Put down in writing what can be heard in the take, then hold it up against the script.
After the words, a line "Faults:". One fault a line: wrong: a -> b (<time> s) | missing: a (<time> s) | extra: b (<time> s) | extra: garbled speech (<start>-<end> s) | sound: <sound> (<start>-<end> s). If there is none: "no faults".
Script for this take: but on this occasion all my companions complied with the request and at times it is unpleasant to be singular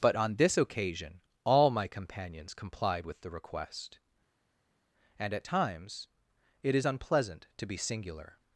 but on this occasion all my companions complied with the request and at times it is unpleasant to be singular
Faults:
no faults